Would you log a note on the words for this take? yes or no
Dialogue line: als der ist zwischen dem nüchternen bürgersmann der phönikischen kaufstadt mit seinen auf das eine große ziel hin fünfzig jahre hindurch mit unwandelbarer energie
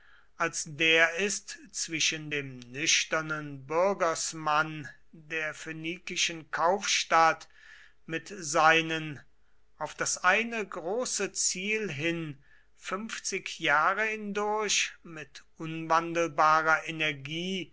no